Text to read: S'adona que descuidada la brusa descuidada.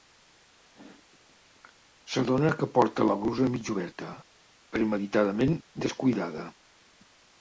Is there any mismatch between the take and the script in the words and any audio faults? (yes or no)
yes